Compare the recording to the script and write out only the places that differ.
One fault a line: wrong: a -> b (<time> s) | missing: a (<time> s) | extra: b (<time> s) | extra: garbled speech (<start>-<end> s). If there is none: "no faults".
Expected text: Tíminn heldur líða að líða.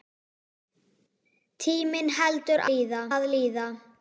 no faults